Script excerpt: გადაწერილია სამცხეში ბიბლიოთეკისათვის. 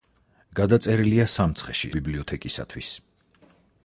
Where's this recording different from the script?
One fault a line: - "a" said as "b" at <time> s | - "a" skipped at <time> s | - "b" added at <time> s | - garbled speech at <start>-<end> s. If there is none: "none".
none